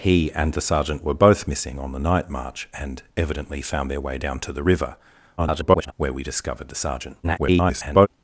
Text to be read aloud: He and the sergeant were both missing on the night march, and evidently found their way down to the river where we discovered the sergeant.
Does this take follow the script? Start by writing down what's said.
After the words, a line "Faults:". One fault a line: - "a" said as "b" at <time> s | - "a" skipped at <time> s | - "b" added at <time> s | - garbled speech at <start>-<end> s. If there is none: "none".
He and the sergeant were both missing on the night march, and evidently found their way down to the river [garbled] where we discovered the sergeant. [garbled]
Faults:
- garbled speech at 5.4-5.9 s
- garbled speech at 7.2-8.1 s